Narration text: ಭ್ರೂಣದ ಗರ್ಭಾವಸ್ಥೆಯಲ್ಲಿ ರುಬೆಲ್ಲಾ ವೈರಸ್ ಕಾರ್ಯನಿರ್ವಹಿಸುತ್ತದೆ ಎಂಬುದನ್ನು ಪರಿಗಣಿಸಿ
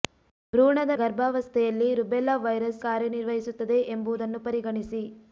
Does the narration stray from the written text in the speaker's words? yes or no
no